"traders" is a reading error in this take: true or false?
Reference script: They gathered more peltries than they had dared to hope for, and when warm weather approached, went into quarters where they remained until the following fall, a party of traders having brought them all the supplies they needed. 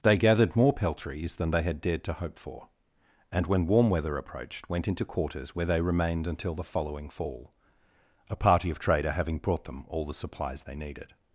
true